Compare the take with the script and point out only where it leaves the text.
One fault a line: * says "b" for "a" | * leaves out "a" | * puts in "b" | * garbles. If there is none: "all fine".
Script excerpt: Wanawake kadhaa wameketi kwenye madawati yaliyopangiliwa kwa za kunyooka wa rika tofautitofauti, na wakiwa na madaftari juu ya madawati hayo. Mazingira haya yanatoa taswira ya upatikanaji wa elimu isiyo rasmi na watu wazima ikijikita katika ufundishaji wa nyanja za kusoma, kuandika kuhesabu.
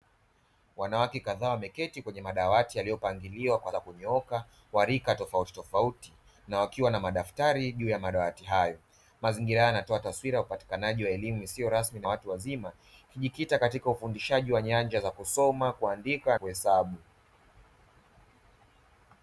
all fine